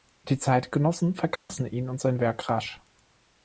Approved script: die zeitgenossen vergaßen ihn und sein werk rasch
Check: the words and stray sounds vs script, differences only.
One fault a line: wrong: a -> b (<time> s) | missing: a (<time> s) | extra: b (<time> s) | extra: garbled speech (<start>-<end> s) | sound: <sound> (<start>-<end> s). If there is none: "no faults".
sound: dropout (1.4-1.5 s)